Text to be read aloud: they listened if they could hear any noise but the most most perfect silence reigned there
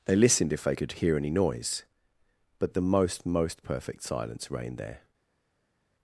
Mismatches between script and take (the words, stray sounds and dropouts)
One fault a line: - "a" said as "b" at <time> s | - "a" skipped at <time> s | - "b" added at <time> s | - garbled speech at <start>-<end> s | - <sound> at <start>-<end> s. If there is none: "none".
none